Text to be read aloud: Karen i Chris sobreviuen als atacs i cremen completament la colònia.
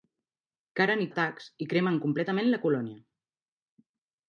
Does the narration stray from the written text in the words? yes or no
yes